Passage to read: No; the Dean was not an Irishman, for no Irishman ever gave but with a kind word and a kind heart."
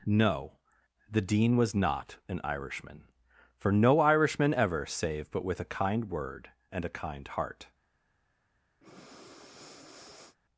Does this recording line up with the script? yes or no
no